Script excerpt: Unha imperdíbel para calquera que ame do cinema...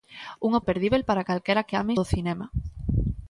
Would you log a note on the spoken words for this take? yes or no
no